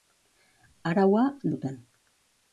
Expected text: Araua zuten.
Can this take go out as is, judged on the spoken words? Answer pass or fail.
pass